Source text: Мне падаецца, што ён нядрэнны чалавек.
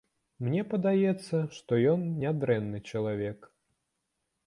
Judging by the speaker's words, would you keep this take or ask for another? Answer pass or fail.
pass